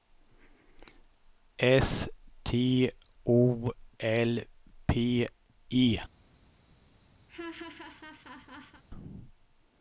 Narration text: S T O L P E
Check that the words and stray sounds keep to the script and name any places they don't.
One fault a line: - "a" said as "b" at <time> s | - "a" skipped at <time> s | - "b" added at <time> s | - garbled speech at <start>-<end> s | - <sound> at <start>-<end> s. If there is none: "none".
- laugh at 7.3-8.8 s